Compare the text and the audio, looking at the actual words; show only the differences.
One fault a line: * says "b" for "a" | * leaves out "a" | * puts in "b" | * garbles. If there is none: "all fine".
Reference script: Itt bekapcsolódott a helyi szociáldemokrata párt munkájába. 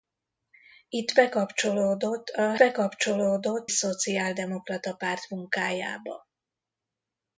* says "bekapcsolódott" for "helyi"